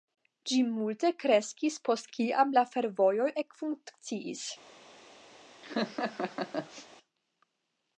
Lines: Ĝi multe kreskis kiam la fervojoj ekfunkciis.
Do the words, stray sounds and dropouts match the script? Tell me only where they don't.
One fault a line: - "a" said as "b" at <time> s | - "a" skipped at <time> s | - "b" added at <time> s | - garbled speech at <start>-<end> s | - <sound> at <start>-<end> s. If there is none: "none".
- "post" added at 1.9 s
- laugh at 5.6-6.9 s